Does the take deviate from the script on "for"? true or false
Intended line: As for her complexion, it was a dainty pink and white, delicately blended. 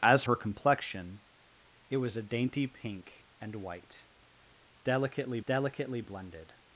true